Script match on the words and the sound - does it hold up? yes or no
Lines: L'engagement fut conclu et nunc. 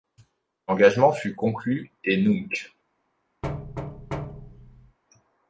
no